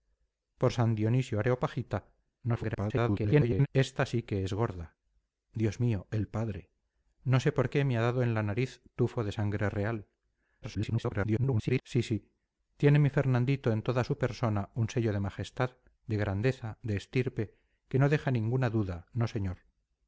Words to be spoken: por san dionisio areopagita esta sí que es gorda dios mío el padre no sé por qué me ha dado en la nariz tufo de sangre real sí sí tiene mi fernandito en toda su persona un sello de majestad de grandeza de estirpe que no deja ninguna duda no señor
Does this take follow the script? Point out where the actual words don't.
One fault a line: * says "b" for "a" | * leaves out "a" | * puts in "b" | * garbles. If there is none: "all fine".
* garbles
* garbles